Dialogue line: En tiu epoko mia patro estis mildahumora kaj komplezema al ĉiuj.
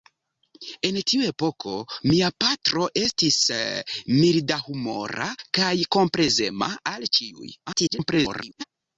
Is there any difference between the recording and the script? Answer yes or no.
yes